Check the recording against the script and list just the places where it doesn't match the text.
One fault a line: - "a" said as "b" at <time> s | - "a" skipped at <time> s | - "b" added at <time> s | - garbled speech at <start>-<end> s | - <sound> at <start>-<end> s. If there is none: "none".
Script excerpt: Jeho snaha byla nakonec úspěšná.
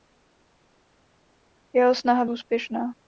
- "byla nakonec" skipped at 2.2 s